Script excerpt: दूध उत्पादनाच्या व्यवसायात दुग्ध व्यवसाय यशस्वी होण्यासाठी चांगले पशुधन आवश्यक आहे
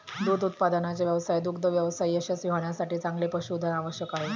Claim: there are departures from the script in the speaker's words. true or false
false